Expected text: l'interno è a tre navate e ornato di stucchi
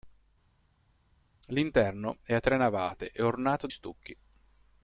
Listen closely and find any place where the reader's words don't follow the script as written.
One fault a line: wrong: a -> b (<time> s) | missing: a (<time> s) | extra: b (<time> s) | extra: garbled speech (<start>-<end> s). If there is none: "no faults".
missing: di (3.7 s)